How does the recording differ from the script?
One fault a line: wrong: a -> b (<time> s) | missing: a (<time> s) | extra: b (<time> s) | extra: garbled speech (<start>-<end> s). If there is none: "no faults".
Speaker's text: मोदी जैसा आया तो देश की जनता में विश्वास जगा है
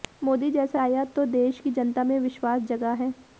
no faults